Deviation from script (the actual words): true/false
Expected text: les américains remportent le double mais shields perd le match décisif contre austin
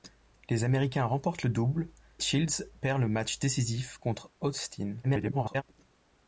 true